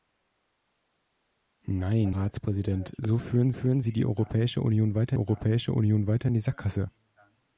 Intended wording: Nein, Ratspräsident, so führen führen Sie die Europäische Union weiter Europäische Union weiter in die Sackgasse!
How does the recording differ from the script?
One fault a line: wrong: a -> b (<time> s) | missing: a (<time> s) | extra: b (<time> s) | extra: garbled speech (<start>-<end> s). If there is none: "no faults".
no faults